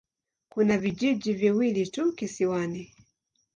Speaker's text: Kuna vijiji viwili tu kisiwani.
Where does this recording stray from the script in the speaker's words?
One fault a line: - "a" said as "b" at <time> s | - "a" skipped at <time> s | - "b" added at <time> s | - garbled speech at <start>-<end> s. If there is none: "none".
none